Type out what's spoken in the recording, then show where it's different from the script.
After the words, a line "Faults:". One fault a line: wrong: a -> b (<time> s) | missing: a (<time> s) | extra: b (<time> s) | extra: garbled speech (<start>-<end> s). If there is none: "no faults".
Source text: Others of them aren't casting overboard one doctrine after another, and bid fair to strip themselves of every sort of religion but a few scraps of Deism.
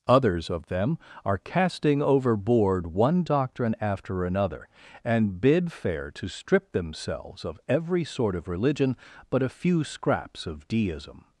Others of them are casting overboard one doctrine after another, and bid fair to strip themselves of every sort of religion but a few scraps of Deism.
Faults:
wrong: aren't -> are (1.2 s)